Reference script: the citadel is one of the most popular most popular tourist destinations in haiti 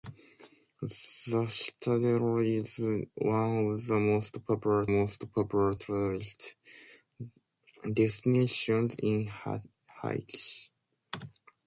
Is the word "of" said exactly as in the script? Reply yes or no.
yes